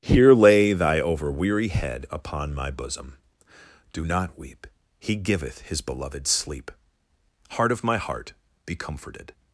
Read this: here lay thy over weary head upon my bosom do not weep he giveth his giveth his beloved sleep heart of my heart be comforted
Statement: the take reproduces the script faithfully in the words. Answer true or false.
false